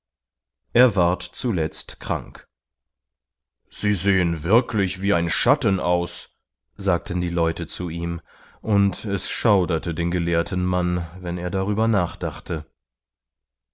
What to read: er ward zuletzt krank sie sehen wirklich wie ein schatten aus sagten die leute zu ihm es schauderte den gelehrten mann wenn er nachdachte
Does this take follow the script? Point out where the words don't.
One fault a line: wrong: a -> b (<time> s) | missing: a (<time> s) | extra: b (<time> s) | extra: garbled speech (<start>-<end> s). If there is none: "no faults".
extra: und (8.6 s)
extra: darüber (11.5 s)